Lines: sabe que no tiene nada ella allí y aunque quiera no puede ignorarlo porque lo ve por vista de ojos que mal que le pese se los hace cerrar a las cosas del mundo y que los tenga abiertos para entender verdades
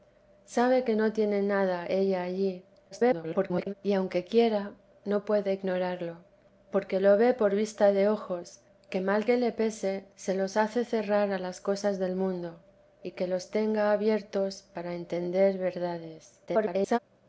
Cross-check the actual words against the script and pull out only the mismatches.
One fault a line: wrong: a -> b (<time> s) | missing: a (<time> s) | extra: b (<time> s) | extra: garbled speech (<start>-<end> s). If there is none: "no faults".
extra: garbled speech (2.9-3.7 s)
extra: garbled speech (16.5-17.0 s)